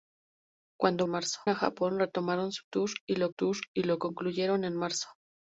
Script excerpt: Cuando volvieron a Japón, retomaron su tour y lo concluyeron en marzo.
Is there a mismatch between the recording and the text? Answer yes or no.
yes